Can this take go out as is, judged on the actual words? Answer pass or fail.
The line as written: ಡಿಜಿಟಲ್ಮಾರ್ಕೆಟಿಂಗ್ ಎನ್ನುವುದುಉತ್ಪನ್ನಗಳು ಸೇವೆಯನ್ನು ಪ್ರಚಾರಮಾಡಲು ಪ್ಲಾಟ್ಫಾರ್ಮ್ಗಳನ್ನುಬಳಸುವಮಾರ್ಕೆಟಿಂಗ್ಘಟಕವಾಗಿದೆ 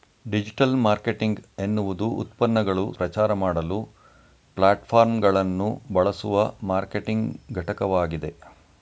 fail